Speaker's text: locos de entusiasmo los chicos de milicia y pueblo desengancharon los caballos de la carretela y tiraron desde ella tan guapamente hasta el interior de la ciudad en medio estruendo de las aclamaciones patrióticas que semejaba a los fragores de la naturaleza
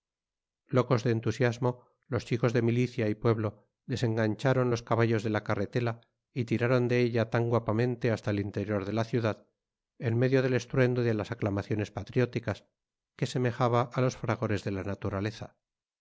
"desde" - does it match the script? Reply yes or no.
no